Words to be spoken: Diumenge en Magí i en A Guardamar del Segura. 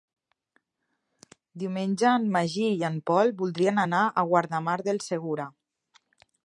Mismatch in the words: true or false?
true